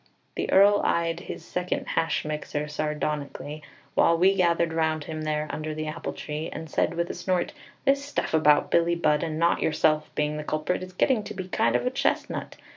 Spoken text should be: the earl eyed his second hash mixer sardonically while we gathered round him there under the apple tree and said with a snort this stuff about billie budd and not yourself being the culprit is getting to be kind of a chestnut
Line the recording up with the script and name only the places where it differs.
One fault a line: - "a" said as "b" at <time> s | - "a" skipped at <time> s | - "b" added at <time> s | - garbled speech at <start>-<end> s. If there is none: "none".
none